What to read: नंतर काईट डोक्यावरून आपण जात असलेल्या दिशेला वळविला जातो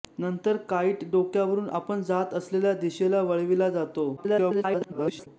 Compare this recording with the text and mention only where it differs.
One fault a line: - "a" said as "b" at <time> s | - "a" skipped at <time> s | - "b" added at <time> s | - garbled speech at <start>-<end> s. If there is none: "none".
- garbled speech at 4.2-5.3 s